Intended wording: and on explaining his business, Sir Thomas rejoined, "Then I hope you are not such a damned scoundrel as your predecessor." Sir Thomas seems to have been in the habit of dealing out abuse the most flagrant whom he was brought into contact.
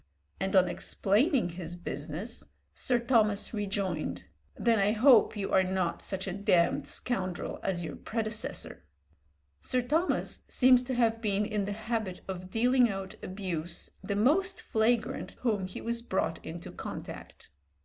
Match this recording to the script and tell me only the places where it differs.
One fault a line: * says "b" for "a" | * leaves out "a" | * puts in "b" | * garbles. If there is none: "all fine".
all fine